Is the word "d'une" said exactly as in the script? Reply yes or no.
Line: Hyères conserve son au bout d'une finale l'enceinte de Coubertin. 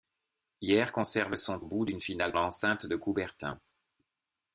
yes